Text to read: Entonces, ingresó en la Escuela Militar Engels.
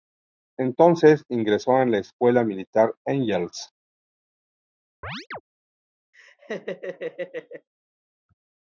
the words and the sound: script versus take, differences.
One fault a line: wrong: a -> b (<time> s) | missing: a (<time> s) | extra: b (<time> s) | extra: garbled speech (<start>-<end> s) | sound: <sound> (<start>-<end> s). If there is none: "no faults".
sound: chirp (5.0-5.4 s)
sound: laugh (6.1-7.7 s)